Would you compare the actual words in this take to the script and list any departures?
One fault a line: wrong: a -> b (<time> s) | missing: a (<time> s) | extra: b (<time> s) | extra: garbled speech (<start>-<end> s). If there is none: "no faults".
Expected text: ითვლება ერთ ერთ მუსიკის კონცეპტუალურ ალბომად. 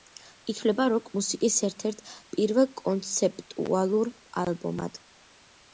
extra: როკ მუსიკის (0.9 s)
wrong: მუსიკის -> პირველ (2.4 s)